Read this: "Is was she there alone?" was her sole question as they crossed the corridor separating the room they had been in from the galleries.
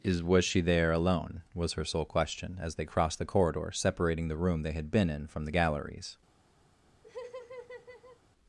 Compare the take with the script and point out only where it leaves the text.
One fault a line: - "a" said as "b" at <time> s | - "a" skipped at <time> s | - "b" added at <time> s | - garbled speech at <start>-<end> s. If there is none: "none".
none